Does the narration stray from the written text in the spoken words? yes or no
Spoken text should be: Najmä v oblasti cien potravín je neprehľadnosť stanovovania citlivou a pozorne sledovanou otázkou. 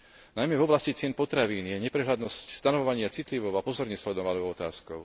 no